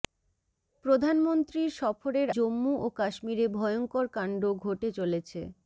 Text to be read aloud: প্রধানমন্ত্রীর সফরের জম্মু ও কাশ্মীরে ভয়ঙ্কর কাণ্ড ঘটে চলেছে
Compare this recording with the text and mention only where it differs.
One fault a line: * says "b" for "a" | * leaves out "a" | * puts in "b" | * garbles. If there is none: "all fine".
all fine